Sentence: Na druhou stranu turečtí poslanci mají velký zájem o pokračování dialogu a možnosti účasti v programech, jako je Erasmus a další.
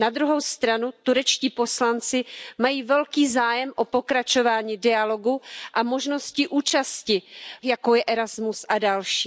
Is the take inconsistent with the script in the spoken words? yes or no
yes